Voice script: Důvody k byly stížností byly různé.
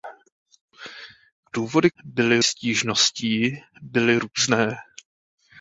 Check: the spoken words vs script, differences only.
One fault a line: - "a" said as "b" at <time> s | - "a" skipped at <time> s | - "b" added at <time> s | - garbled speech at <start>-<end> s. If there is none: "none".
none